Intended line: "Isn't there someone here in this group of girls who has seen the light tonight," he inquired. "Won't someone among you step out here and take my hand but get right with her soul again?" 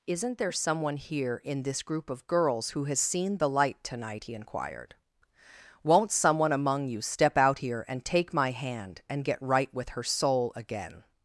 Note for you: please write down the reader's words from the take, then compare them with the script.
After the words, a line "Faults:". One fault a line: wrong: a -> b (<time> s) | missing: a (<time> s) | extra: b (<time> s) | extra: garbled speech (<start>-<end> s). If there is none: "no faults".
"Isn't there someone here in this group of girls who has seen the light tonight," he inquired. "Won't someone among you step out here and take my hand and get right with her soul again?"
Faults:
wrong: but -> and (9.1 s)